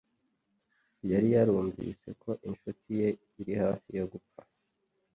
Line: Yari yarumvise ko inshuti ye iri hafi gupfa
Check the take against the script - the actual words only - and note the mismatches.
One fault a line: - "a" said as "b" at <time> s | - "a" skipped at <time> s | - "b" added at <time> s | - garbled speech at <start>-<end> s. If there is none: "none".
none